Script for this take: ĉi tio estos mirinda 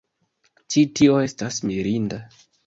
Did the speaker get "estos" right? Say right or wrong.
wrong